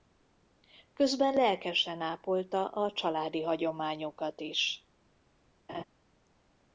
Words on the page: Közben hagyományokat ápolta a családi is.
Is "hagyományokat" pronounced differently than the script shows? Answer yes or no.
yes